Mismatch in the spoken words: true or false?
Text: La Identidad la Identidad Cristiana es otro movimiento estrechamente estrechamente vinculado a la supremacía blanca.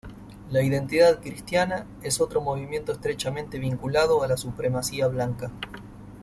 true